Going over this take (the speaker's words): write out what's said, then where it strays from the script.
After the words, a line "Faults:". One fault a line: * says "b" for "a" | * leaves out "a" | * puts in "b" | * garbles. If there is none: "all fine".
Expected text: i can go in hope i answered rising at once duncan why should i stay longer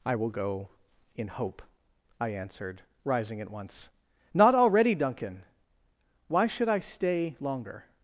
i will go in hope i answered rising at once not already duncan why should i stay longer
Faults:
* says "will" for "can"
* puts in "not already"